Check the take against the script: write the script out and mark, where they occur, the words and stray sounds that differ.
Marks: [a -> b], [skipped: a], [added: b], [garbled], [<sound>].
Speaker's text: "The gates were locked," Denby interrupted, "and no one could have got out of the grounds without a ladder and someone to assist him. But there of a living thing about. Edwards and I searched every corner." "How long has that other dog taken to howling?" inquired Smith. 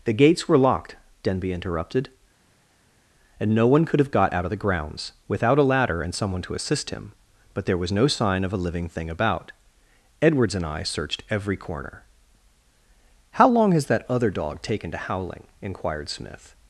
"The gates were locked," Denby interrupted, "and no one could have got out of the grounds without a ladder and someone to assist him. But there [added: was no sign] of a living thing about. Edwards and I searched every corner." "How long has that other dog taken to howling?" inquired Smith.